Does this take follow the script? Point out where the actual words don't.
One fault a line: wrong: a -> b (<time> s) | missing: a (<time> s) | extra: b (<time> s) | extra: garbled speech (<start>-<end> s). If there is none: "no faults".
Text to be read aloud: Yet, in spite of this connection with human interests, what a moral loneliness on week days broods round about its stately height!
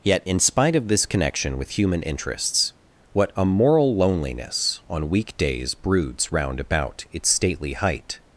no faults